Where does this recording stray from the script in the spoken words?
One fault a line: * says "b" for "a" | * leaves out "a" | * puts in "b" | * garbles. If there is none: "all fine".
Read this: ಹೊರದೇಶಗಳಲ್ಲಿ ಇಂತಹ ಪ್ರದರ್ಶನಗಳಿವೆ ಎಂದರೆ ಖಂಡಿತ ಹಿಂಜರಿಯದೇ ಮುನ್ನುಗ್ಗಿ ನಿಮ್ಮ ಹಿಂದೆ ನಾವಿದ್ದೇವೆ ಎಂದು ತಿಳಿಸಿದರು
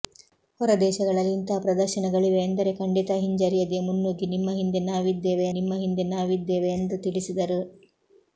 * puts in "ನಿಮ್ಮ ಹಿಂದೆ ನಾವಿದ್ದೇವೆ"